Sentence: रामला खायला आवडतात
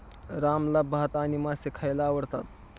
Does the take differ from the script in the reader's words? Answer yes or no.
yes